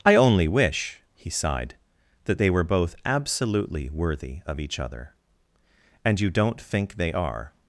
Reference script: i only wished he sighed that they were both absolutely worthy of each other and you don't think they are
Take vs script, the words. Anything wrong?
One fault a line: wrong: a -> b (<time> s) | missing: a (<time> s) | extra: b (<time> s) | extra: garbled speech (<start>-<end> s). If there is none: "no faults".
wrong: wished -> wish (0.5 s)